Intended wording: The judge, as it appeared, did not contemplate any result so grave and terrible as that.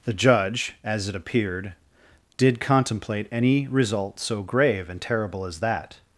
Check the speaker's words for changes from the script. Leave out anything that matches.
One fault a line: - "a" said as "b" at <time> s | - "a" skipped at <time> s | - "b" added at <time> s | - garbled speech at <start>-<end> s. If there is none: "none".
- "not" skipped at 2.6 s